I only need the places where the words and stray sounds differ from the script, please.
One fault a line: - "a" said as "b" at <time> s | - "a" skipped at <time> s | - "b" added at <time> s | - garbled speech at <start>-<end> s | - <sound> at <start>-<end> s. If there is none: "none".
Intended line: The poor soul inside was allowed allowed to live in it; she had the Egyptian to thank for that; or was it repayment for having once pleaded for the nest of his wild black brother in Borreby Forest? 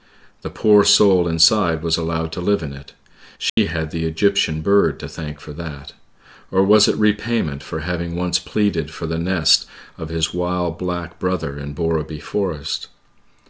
- "allowed" skipped at 2.3 s
- dropout at 3.5-3.6 s
- "bird" added at 4.6 s